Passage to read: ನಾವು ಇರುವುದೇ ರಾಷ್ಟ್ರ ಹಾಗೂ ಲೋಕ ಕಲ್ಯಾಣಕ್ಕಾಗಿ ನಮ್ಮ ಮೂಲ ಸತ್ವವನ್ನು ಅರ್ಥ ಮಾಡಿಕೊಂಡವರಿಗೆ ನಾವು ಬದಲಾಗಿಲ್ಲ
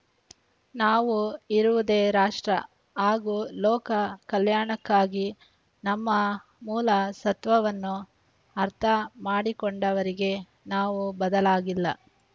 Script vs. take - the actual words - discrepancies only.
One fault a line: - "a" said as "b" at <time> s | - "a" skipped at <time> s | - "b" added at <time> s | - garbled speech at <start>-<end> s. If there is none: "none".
none